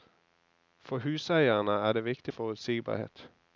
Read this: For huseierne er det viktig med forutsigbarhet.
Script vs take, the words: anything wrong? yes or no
yes